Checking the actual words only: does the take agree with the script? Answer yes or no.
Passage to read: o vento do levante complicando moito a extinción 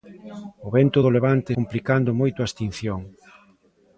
yes